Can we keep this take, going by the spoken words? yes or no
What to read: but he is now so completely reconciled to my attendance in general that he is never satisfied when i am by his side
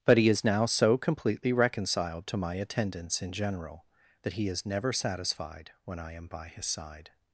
yes